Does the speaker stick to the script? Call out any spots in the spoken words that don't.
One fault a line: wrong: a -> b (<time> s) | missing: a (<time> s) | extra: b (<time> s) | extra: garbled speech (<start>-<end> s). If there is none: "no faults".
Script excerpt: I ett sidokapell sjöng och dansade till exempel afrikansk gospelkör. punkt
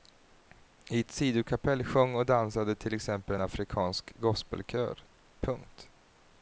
no faults